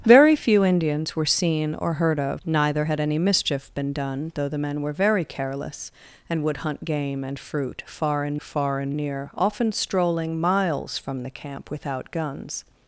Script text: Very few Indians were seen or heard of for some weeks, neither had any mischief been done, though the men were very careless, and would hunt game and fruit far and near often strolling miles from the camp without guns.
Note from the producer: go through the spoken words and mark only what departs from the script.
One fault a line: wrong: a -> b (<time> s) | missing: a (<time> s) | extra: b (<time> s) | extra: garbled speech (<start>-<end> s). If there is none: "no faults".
missing: for some weeks (2.4 s)
extra: far and (8.4 s)